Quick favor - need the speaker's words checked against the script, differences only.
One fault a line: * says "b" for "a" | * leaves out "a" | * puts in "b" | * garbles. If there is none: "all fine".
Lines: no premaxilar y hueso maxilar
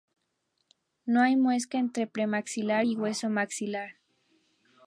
* puts in "hay muesca entre"